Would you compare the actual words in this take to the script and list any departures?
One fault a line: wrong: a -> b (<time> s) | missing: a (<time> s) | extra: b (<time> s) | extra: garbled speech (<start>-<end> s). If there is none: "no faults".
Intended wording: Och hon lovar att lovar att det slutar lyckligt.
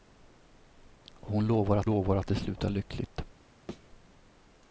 no faults